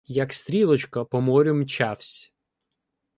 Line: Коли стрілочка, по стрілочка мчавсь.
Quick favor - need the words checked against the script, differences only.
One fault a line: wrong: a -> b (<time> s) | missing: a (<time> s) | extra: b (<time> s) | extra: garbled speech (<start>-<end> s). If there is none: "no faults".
wrong: Коли -> Як (0.1 s)
wrong: стрілочка -> морю (1.2 s)